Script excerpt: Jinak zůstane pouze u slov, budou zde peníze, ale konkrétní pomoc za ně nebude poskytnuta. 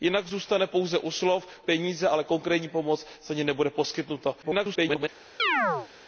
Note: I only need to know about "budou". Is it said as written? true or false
false